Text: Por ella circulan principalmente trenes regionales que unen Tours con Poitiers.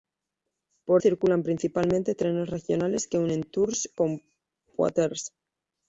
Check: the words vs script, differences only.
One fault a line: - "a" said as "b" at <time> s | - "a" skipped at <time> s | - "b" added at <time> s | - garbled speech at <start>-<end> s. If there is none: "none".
- "ella" skipped at 1.0 s